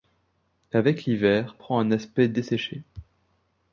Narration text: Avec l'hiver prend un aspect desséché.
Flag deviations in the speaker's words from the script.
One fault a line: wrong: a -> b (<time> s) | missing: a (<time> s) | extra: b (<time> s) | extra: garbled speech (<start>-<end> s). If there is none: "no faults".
no faults